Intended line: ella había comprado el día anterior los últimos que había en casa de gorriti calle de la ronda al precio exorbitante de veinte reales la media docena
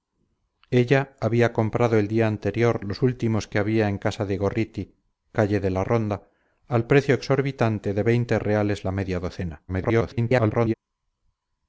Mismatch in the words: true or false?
true